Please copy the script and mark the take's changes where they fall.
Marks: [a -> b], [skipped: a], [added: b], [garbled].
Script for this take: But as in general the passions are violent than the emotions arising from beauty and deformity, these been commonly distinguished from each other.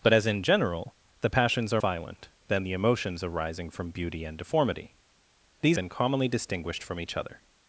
But as in general the passions are violent than the emotions arising from beauty and deformity, these been commonly distinguished from each other.